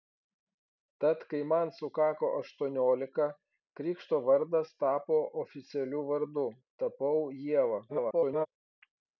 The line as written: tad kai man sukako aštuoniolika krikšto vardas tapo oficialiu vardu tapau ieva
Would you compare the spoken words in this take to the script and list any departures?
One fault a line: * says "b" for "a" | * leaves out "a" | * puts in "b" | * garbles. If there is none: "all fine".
* garbles